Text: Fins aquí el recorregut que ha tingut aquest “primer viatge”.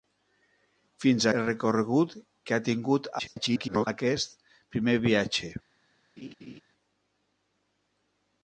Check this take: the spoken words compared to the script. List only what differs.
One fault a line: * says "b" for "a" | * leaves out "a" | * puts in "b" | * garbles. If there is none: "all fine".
* leaves out "aquí"
* garbles